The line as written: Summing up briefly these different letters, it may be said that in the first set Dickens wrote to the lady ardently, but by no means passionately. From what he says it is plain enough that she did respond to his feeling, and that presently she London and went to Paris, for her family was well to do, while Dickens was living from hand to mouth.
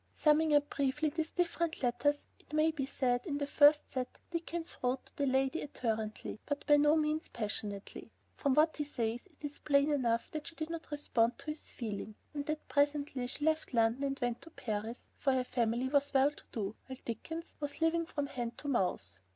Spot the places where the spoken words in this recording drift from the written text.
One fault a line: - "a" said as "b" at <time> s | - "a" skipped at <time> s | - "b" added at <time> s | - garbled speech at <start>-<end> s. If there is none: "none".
- "not" added at 10.7 s
- "left" added at 13.4 s